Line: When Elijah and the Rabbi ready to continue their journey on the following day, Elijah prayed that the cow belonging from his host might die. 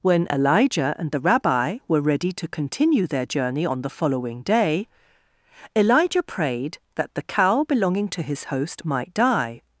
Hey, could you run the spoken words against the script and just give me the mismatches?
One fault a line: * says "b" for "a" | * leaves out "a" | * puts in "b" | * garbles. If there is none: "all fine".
* puts in "were"
* says "to" for "from"